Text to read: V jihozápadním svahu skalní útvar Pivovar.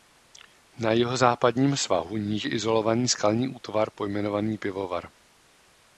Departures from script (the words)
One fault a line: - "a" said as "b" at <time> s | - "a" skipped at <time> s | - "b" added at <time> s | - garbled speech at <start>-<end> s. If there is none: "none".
- "V" said as "Na" at 0.8 s
- "níže izolovaný" added at 2.2 s
- "pojmenovaný" added at 3.9 s